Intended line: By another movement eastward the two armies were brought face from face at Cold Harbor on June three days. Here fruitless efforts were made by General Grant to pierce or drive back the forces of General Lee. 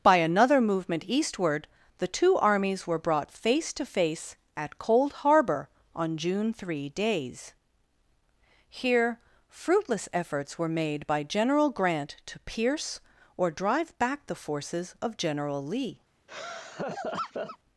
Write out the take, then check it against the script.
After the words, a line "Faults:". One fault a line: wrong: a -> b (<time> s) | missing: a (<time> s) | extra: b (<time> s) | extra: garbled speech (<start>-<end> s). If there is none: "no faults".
By another movement eastward the two armies were brought face to face at Cold Harbor on June three days. Here fruitless efforts were made by General Grant to pierce or drive back the forces of General Lee.
Faults:
wrong: from -> to (3.7 s)